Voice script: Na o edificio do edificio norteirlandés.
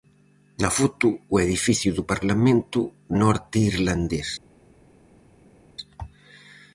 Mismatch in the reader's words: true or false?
true